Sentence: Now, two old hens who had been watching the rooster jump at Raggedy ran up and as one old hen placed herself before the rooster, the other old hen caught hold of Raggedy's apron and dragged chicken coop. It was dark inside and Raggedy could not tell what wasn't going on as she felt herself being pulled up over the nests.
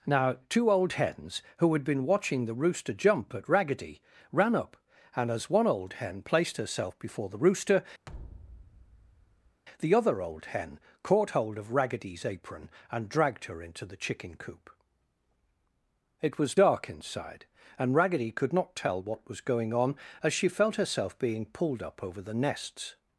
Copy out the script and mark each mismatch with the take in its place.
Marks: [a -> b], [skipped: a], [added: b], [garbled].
Now, two old hens who had been watching the rooster jump at Raggedy ran up and as one old hen placed herself before the rooster, the other old hen caught hold of Raggedy's apron and dragged [added: her into the] chicken coop. It was dark inside and Raggedy could not tell what [wasn't -> was] going on as she felt herself being pulled up over the nests.